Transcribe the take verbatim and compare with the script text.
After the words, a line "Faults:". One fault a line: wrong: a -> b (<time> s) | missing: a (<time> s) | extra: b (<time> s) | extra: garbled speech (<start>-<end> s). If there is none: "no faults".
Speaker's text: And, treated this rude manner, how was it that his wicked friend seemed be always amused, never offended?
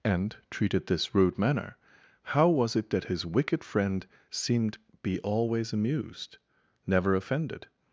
And, treated this rude manner, how was it that his wicked friend seemed be always amused, never offended?
Faults:
no faults